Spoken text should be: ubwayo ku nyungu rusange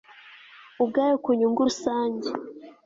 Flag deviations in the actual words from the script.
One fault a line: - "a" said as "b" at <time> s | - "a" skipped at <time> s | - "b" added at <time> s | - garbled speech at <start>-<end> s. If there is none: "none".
none